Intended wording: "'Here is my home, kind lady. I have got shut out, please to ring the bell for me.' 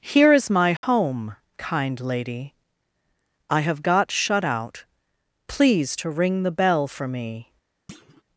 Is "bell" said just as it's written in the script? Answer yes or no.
yes